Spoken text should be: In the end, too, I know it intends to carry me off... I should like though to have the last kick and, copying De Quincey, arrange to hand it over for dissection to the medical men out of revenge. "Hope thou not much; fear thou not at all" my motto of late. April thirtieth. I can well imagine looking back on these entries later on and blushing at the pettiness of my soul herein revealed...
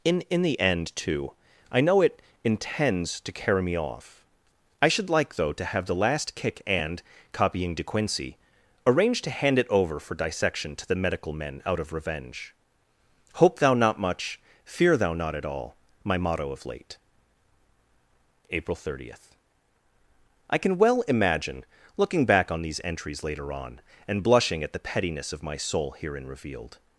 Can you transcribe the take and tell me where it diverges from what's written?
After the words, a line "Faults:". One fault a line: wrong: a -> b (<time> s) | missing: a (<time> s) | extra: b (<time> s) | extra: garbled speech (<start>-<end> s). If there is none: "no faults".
In in the end, too, I know it intends to carry me off... I should like though to have the last kick and, copying De Quincey, arrange to hand it over for dissection to the medical men out of revenge. "Hope thou not much; fear thou not at all" my motto of late. April thirtieth. I can well imagine looking back on these entries later on and blushing at the pettiness of my soul herein revealed...
Faults:
extra: in (0.3 s)